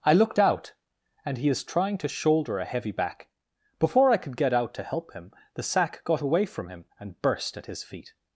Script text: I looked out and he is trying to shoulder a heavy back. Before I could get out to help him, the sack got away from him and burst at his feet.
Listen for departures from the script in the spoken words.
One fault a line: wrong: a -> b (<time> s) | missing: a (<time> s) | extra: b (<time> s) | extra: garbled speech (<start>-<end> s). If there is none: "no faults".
no faults